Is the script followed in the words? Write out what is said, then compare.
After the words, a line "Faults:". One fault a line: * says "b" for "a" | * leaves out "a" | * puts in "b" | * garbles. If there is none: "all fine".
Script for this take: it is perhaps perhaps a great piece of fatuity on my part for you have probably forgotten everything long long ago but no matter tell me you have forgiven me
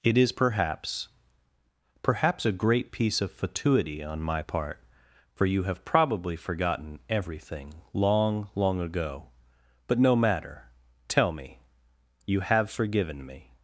it is perhaps perhaps a great piece of fatuity on my part for you have probably forgotten everything long long ago but no matter tell me you have forgiven me
Faults:
all fine